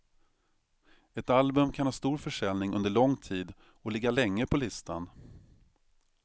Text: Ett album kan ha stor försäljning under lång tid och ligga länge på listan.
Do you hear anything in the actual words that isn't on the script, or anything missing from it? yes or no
no